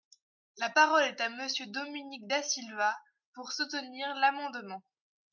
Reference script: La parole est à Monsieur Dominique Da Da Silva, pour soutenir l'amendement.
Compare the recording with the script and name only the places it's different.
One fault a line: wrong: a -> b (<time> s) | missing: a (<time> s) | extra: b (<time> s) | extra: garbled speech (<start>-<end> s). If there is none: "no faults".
missing: Da (2.4 s)